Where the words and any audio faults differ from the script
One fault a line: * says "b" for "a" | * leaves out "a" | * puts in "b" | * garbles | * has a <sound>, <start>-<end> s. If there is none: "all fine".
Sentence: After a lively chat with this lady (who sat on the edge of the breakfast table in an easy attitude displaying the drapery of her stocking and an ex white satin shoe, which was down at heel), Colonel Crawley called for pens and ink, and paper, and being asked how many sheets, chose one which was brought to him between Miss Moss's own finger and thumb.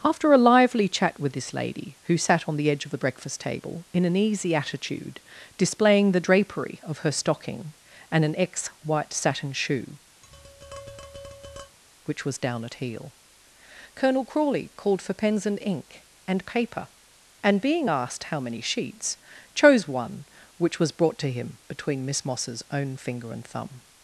* has a tap, 10.2-11.8 s